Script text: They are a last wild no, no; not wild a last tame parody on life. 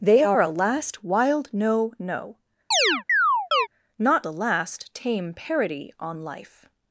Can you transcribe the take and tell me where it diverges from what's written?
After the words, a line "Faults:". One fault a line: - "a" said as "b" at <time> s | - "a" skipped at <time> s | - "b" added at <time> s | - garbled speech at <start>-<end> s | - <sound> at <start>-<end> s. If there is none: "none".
They are a last wild no, no; not a last tame parody on life.
Faults:
- chirp at 2.7-3.7 s
- "wild" skipped at 4.3 s